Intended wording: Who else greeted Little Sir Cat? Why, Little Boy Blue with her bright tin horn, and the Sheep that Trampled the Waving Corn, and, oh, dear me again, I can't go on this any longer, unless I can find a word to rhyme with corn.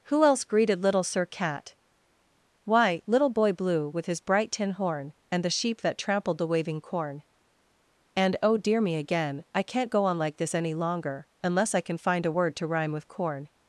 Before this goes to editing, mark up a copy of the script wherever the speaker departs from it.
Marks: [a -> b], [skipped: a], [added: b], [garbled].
Who else greeted Little Sir Cat? Why, Little Boy Blue with [her -> his] bright tin horn, and the Sheep that Trampled the Waving Corn, and, oh, dear me again, I can't go on [added: like] this any longer, unless I can find a word to rhyme with corn.